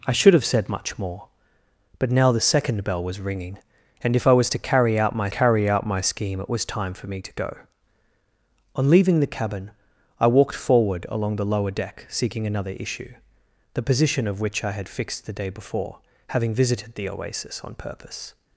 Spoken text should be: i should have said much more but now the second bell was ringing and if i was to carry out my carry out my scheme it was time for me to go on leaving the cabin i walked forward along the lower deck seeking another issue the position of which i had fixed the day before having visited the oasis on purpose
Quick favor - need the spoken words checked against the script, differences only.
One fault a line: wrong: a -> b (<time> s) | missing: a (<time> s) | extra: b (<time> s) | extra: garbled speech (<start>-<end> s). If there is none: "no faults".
no faults